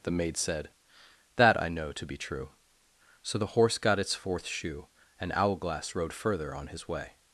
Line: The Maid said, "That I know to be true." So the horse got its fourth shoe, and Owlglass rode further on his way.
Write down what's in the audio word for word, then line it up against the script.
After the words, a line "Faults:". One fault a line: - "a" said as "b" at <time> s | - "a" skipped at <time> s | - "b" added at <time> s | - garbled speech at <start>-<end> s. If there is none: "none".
The Maid said, "That I know to be true." So the horse got its fourth shoe, and Owlglass rode further on his way.
Faults:
none